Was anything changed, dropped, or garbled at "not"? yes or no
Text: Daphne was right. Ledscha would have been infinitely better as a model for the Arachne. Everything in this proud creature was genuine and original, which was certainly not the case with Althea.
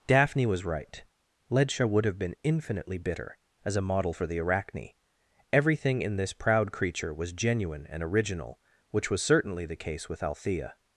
yes